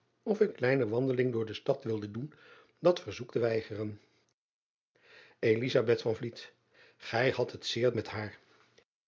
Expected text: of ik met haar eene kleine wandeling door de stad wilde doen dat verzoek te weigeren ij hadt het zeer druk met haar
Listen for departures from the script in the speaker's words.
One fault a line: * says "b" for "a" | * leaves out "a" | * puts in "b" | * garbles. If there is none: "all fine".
* leaves out "met haar eene"
* leaves out "druk"